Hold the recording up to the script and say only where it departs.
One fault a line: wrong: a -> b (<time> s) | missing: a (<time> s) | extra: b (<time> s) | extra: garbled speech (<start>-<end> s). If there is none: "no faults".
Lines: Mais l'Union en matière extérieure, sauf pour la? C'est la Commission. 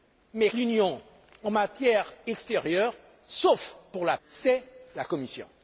no faults